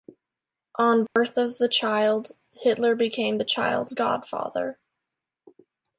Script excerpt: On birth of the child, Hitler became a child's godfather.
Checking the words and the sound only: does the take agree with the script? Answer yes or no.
no